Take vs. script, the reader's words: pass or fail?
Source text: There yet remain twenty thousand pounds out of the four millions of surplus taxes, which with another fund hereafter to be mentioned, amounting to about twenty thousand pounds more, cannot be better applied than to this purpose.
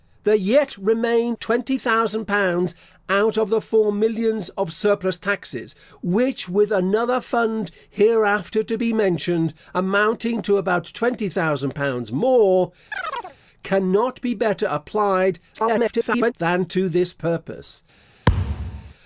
fail